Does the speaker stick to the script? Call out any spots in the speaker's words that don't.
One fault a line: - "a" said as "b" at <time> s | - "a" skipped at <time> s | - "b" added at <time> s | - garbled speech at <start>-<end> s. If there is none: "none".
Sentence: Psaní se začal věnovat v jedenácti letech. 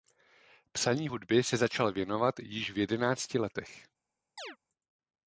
- "hudby" added at 1.0 s
- "již" added at 2.4 s